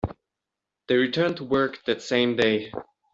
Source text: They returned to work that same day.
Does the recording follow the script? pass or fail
pass